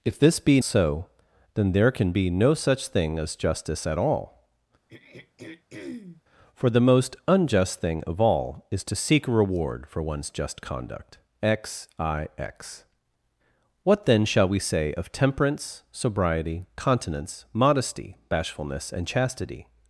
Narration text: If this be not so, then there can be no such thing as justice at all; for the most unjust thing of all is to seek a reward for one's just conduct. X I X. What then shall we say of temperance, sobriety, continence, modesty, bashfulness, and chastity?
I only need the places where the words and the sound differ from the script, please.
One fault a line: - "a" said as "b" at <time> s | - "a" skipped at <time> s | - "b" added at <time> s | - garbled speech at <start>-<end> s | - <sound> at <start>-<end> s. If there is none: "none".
- "not" skipped at 0.6 s
- throat clearing at 4.9-6.2 s